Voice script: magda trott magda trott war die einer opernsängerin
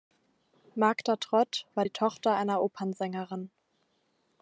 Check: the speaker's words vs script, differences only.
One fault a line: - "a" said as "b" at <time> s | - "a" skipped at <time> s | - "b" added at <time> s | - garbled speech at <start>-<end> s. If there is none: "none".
- "magda trott" skipped at 1.7 s
- "tochter" added at 1.9 s